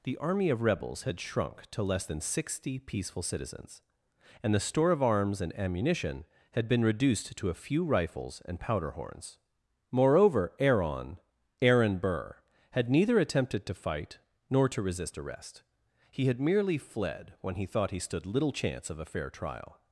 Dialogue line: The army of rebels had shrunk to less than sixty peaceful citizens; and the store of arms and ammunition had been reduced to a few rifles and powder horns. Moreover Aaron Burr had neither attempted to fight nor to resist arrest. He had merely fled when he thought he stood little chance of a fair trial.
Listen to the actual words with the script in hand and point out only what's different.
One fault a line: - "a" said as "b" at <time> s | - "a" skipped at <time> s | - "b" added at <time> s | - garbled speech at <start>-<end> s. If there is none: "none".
- "Aaron" added at 11.6 s